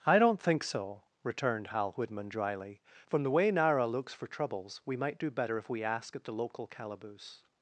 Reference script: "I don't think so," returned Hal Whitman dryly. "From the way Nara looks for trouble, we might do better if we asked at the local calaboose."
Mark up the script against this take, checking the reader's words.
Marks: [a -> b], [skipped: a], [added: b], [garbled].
"I don't think so," returned Hal Whitman dryly. "From the way Nara looks for [trouble, -> troubles] we might do better if we [asked -> ask] at the local calaboose."